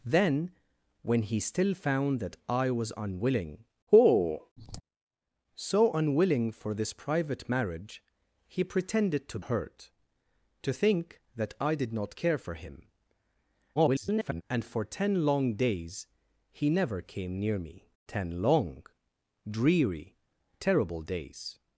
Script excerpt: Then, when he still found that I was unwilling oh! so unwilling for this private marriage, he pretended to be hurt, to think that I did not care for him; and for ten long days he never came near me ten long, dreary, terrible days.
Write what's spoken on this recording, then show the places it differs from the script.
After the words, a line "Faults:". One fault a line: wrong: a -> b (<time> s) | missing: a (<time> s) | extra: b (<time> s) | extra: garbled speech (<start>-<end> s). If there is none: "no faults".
Then, when he still found that I was unwilling oh! so unwilling for this private marriage, he pretended to hurt, to think that I did not care for him; [garbled] and for ten long days he never came near me ten long, dreary, terrible days.
Faults:
missing: be (9.4 s)
extra: garbled speech (13.8-14.4 s)